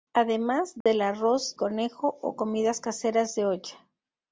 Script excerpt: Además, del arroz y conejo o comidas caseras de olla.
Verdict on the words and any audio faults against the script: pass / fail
fail